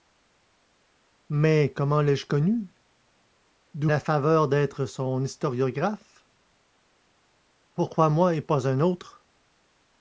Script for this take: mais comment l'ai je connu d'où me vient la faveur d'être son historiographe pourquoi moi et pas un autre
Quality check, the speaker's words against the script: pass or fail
fail